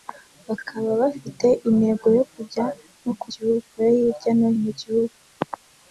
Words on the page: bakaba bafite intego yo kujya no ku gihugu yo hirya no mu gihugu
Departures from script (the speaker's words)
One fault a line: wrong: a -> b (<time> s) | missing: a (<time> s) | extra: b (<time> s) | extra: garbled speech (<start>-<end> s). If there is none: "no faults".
no faults